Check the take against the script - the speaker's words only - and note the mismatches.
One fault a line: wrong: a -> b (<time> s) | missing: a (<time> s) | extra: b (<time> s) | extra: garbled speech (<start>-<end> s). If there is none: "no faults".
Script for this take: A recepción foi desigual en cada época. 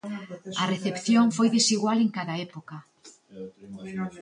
no faults